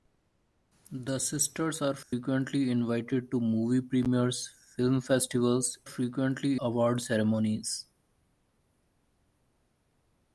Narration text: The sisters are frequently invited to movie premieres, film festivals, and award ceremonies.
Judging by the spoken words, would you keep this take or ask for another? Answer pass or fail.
fail